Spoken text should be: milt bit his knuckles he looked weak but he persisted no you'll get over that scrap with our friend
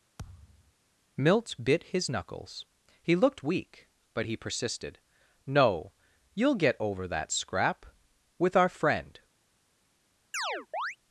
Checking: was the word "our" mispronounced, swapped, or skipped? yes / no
no